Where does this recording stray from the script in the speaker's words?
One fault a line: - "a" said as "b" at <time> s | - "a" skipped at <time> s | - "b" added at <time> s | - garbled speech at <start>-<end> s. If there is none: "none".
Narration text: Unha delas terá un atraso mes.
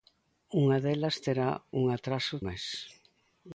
none